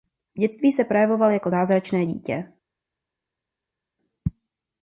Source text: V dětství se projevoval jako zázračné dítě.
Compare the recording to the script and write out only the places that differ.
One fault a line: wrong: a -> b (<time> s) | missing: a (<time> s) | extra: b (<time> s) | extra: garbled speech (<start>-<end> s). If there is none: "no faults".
no faults